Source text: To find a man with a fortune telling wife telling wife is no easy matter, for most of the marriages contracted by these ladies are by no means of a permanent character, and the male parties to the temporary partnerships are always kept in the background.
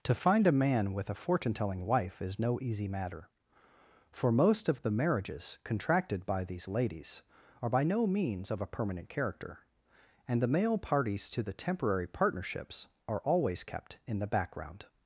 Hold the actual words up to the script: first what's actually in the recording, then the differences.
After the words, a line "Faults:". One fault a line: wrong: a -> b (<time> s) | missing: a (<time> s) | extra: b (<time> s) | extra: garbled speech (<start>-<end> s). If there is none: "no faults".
To find a man with a fortune telling wife is no easy matter, for most of the marriages contracted by these ladies are by no means of a permanent character, and the male parties to the temporary partnerships are always kept in the background.
Faults:
missing: telling wife (2.2 s)